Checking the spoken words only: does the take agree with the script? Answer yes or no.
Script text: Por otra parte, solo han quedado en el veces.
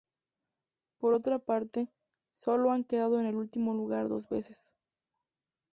no